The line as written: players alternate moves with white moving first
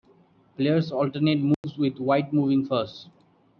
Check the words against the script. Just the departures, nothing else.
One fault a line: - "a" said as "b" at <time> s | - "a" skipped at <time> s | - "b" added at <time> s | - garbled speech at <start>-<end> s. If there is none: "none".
none